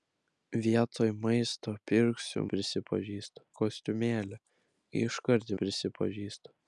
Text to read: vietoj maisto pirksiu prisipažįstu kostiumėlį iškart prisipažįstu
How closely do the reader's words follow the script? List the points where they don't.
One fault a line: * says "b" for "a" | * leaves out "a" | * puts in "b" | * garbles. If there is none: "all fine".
all fine